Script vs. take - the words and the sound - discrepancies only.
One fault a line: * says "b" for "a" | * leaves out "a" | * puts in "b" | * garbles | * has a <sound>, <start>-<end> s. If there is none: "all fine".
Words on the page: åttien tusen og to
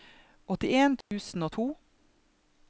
* has a dropout, 1.0-1.1 s